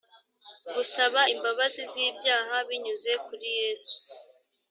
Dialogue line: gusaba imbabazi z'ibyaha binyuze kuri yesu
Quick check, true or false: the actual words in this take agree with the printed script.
true